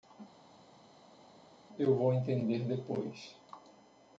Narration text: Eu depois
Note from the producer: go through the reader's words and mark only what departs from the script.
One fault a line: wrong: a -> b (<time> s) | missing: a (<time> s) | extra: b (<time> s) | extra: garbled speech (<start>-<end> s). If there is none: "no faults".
extra: vou entender (1.9 s)